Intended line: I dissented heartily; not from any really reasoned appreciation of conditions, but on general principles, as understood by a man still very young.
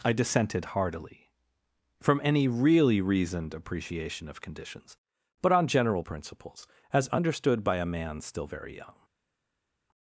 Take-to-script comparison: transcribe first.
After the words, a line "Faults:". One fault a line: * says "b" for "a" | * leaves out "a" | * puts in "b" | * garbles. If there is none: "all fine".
I dissented heartily; from any really reasoned appreciation of conditions, but on general principles, as understood by a man still very young.
Faults:
* leaves out "not"